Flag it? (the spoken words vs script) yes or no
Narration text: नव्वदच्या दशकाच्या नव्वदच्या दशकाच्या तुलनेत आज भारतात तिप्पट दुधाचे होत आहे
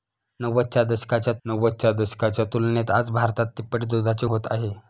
no